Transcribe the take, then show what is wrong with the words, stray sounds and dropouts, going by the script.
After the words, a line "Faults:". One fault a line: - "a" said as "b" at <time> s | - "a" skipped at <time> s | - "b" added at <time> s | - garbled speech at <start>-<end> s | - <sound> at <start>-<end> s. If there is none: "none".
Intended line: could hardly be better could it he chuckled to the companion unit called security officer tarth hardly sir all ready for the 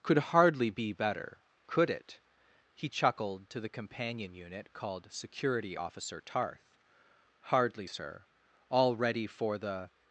could hardly be better could it he chuckled to the companion unit called security officer tarth hardly sir all ready for the
Faults:
none